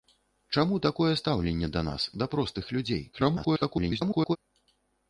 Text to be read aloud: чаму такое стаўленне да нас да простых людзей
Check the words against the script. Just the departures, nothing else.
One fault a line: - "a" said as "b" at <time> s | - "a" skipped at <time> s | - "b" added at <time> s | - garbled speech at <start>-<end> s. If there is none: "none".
- garbled speech at 3.1-4.4 s